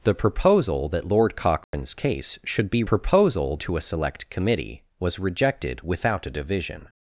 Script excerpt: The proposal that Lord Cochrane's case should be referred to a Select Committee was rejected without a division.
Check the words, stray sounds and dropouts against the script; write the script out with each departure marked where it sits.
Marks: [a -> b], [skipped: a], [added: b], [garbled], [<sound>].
The proposal that Lord Cochrane's [dropout] case should be [referred -> proposal] to a Select Committee was rejected without a division.